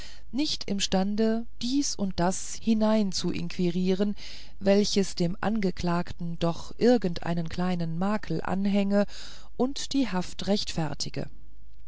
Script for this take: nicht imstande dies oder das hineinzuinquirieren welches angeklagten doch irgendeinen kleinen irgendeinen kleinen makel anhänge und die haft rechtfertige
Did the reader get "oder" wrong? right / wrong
wrong